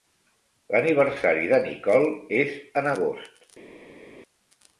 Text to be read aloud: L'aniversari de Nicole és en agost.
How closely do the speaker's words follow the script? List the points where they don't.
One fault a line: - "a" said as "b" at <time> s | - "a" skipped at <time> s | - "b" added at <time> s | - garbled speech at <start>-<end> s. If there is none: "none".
none